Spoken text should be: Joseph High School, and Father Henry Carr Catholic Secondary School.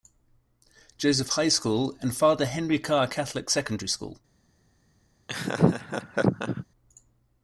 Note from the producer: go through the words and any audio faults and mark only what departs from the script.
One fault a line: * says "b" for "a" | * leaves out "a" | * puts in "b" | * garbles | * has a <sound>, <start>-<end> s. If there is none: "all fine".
* has a laugh, 5.3-6.7 s